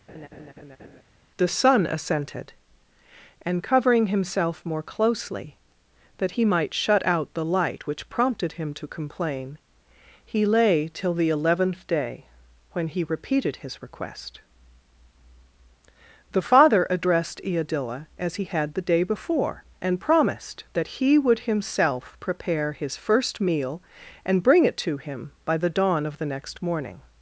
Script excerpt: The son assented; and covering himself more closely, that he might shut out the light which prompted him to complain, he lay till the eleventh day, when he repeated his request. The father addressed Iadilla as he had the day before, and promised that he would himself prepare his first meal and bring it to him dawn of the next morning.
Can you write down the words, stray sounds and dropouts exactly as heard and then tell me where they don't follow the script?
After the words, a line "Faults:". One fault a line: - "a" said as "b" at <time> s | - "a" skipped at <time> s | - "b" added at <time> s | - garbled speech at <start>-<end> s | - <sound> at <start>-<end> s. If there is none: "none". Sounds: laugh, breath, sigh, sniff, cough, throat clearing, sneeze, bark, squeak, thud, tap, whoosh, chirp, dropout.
The son assented; and covering himself more closely, that he might shut out the light which prompted him to complain, he lay till the eleventh day, when he repeated his request. The father addressed Iadilla as he had the day before, and promised that he would himself prepare his first meal and bring it to him by the dawn of the next morning.
Faults:
- laugh at 0.1-1.0 s
- "by the" added at 25.5 s